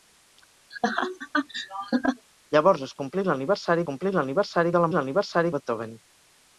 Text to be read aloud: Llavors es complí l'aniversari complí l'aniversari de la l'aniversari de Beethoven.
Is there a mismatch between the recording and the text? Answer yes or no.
no